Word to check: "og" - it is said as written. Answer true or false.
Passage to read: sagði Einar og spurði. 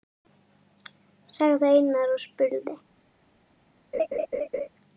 true